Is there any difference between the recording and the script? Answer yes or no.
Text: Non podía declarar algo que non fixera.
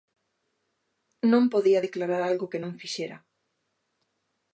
no